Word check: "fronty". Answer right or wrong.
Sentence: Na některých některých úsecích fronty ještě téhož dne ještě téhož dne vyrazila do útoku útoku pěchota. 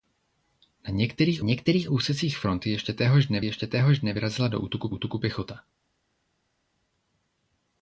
right